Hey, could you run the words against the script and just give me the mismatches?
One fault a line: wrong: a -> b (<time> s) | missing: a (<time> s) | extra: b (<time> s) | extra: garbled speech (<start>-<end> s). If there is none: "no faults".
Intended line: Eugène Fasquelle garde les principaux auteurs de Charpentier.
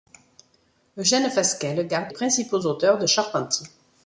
missing: les (2.1 s)